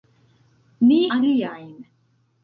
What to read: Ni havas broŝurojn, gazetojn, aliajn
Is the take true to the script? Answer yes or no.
no